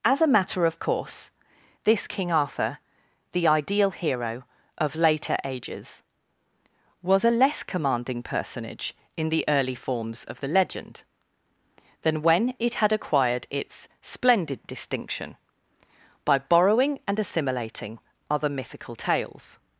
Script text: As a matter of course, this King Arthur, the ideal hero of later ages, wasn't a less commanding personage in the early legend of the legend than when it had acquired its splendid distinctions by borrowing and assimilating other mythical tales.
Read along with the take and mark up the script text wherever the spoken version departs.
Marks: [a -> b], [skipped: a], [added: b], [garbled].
As a matter of course, this King Arthur, the ideal hero of later ages, [wasn't -> was] a less commanding personage in the early [legend -> forms] of the legend than when it had acquired its splendid [distinctions -> distinction] by borrowing and assimilating other mythical tales.